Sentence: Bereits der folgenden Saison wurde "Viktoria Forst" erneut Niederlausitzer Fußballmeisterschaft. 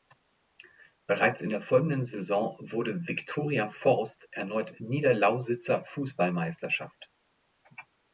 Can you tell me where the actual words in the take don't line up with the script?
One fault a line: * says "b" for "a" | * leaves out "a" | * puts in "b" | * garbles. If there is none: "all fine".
* puts in "in"